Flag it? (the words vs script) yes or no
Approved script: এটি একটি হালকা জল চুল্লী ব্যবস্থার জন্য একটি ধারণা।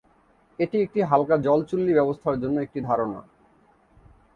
no